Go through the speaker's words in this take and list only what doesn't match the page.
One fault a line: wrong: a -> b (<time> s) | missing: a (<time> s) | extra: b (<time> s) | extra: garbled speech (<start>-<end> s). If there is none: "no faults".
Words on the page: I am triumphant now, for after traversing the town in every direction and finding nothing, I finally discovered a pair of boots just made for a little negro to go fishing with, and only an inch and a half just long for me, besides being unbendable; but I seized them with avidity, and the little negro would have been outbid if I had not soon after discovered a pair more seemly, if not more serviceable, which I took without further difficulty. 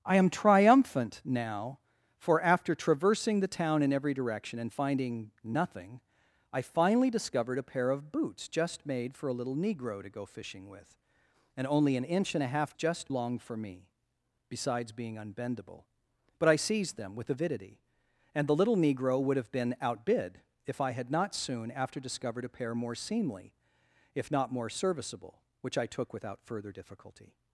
no faults